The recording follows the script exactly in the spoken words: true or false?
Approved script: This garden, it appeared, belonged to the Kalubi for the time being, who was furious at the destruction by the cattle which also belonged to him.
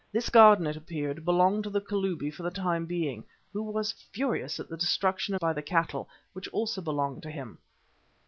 true